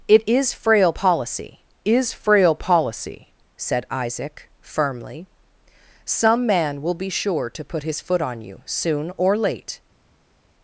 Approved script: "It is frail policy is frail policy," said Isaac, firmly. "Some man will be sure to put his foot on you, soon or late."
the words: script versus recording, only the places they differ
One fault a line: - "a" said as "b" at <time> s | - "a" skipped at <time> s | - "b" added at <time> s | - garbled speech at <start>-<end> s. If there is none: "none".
none